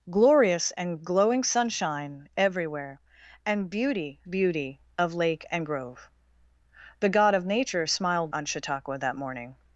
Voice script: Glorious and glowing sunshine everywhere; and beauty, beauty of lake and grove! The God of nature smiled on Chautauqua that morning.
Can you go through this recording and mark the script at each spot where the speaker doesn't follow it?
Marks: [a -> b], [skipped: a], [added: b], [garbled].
Glorious and glowing sunshine everywhere; and beauty, beauty of lake and grove! The God of nature smiled on Chautauqua that morning.